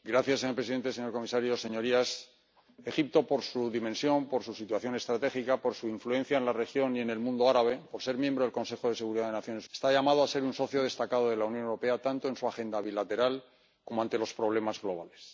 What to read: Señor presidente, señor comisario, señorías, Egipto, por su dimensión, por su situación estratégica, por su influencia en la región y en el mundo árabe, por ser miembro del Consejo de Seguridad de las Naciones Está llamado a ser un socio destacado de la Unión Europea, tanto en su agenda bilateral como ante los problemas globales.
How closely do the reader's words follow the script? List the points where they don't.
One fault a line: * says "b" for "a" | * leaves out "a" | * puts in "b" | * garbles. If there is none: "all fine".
all fine